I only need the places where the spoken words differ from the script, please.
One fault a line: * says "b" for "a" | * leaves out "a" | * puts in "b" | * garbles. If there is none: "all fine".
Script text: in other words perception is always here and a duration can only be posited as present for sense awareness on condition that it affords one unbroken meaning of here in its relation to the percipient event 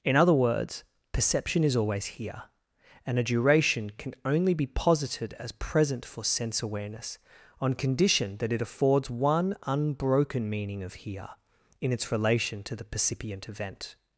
all fine